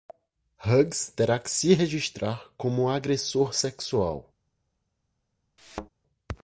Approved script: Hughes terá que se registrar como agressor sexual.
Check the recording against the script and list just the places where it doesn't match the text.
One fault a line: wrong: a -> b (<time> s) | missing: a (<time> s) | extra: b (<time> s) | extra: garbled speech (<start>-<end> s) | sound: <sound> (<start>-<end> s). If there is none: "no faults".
sound: thud (5.6-5.9 s)